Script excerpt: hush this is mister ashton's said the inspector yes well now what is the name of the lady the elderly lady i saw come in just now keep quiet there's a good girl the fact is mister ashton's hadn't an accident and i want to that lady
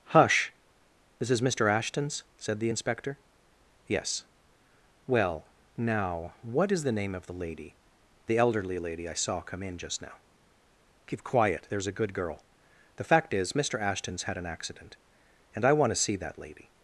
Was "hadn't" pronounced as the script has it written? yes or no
no